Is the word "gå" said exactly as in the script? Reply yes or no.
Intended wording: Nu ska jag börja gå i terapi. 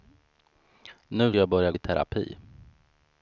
no